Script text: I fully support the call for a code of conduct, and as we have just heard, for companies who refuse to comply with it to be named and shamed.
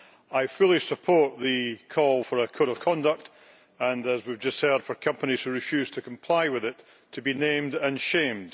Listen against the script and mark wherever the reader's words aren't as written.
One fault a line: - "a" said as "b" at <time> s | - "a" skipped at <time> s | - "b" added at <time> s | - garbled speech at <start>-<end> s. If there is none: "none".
none